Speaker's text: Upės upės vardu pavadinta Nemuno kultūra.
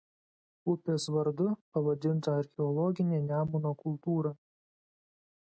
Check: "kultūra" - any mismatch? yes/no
no